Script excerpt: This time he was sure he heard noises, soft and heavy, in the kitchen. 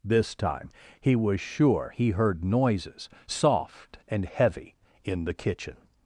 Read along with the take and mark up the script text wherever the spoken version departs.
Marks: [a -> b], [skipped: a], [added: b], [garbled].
This time he was sure he heard noises, soft and heavy, in the kitchen.